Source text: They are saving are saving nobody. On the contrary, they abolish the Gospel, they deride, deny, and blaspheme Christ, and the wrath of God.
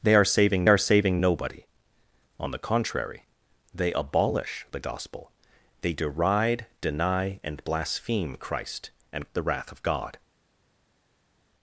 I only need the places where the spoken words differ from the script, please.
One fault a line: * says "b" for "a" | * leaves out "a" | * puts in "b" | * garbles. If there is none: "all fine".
all fine